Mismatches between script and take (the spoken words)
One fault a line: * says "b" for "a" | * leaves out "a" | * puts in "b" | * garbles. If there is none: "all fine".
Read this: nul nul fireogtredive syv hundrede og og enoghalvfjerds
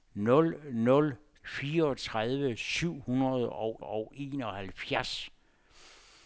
all fine